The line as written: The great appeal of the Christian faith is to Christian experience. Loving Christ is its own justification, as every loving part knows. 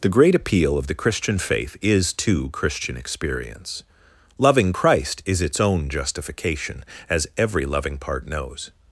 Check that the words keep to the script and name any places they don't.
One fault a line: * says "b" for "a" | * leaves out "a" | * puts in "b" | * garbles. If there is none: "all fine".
all fine